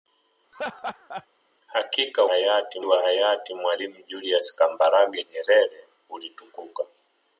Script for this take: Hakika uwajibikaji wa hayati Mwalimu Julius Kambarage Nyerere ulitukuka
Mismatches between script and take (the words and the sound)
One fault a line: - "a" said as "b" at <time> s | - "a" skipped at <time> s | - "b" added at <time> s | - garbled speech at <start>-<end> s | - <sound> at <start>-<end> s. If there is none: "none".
- laugh at 0.5-1.3 s
- "uwajibikaji" said as "hayati" at 2.3 s